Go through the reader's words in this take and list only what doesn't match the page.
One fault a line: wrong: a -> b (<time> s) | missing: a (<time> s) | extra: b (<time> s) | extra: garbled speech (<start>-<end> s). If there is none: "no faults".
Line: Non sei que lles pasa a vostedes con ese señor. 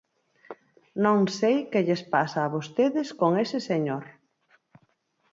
no faults